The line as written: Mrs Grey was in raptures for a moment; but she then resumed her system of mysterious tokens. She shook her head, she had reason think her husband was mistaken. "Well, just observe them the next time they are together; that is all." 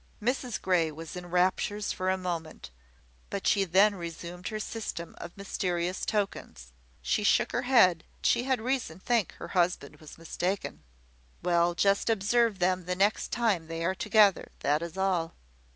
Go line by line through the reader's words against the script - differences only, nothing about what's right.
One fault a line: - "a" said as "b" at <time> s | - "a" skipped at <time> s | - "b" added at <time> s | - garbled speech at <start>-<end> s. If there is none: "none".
none